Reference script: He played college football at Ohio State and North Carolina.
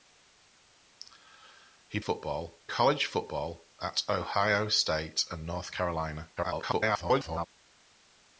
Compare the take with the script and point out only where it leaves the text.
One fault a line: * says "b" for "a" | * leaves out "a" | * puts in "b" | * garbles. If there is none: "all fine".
* says "football" for "played"
* garbles